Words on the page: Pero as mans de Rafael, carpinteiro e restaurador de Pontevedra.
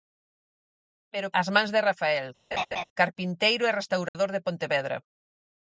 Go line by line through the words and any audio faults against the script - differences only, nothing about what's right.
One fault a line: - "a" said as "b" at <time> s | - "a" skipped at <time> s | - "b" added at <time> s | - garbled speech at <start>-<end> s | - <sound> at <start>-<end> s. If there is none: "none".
- laugh at 2.5-2.8 s
- dropout at 4.1-4.1 s